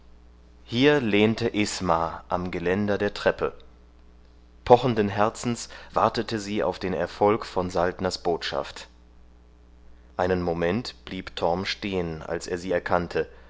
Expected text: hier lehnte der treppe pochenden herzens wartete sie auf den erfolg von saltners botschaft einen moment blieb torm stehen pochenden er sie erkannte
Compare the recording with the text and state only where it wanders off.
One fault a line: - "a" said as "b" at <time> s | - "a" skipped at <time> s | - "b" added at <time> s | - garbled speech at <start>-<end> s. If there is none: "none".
- "isma am geländer" added at 1.5 s
- "pochenden" said as "als" at 12.2 s